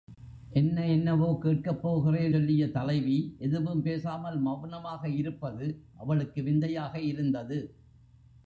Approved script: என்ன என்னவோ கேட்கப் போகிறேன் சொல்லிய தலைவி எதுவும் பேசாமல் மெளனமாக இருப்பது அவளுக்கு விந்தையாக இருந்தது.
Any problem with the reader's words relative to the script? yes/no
no